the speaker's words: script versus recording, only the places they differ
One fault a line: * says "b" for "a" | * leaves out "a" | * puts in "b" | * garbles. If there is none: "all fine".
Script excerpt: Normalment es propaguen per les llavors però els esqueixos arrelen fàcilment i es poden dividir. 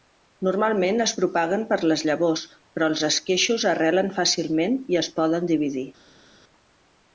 all fine